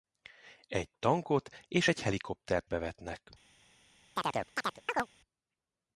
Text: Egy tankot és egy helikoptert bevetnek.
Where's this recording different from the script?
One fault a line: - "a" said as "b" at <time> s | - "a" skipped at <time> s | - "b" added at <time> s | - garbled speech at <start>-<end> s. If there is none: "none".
none